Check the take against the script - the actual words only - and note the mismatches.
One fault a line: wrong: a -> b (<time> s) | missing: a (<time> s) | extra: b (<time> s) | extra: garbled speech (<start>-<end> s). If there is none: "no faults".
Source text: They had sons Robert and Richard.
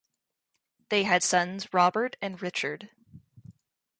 no faults